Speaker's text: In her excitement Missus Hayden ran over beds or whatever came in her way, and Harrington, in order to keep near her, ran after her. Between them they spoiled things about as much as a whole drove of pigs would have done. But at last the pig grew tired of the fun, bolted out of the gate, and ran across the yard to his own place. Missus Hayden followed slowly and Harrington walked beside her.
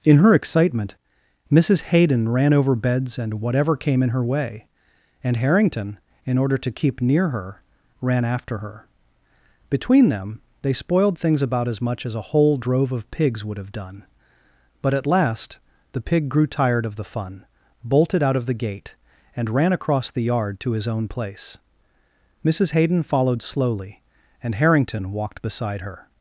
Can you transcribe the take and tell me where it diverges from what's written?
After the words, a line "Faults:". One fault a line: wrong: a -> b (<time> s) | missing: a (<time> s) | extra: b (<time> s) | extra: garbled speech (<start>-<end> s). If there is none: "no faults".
In her excitement Missus Hayden ran over beds and whatever came in her way, and Harrington, in order to keep near her, ran after her. Between them they spoiled things about as much as a whole drove of pigs would have done. But at last the pig grew tired of the fun, bolted out of the gate, and ran across the yard to his own place. Missus Hayden followed slowly and Harrington walked beside her.
Faults:
wrong: or -> and (3.2 s)